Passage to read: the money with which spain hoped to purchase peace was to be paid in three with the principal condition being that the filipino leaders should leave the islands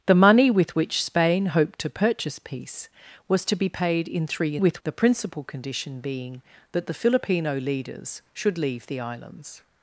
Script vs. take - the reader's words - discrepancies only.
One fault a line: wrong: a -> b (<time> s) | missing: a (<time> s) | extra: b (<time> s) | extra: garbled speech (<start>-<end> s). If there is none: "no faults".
no faults